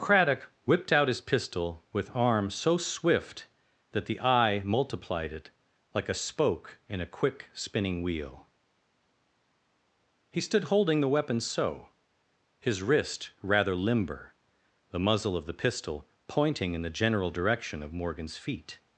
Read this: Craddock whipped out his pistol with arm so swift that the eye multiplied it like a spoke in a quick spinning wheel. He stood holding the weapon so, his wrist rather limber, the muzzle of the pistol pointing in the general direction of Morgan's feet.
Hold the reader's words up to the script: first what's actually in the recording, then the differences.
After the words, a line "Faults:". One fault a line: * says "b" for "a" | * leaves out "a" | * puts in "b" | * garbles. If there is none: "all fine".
Craddock whipped out his pistol with arm so swift that the eye multiplied it like a spoke in a quick spinning wheel. He stood holding the weapon so, his wrist rather limber, the muzzle of the pistol pointing in the general direction of Morgan's feet.
Faults:
all fine